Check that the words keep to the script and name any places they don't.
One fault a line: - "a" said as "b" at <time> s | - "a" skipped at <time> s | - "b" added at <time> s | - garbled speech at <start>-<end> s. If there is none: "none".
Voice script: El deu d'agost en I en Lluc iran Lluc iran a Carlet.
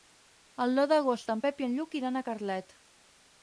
- "Pep" added at 1.5 s
- "Lluc iran" skipped at 2.2 s